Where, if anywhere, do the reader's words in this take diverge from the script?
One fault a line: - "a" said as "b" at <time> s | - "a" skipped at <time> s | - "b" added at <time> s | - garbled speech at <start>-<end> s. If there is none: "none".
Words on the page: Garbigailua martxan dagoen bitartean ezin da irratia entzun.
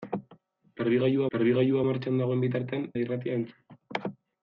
- "garbigailua" added at 1.3 s
- "ezin" skipped at 2.9 s